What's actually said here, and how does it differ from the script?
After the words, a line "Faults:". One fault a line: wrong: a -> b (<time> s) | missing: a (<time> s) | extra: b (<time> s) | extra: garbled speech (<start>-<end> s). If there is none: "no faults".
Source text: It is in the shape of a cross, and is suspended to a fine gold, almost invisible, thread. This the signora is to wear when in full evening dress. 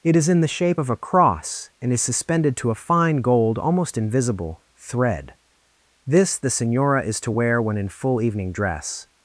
It is in the shape of a cross, and is suspended to a fine gold, almost invisible, thread. This the signora is to wear when in full evening dress.
Faults:
no faults